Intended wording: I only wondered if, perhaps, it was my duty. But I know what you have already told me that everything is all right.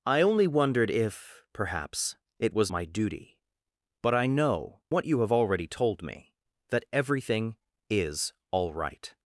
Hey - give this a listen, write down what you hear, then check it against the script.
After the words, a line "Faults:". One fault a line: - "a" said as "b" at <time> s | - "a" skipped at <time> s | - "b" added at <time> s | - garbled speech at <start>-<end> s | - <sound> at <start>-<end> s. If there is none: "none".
I only wondered if, perhaps, it was my duty. But I know what you have already told me that everything is all right.
Faults:
none